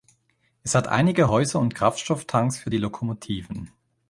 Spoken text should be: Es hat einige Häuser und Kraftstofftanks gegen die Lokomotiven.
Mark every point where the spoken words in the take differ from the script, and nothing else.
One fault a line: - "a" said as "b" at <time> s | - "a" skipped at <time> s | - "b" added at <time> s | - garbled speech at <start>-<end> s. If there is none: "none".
- "gegen" said as "für" at 2.6 s